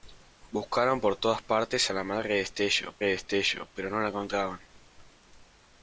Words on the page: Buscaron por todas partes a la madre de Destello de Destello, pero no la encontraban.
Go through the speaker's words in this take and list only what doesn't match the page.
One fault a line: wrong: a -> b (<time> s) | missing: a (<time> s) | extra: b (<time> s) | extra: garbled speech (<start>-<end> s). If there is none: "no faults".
no faults